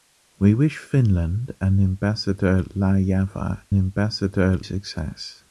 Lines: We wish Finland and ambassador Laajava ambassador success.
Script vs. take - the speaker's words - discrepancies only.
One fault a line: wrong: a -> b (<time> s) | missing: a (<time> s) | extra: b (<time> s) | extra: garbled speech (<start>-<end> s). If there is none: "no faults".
no faults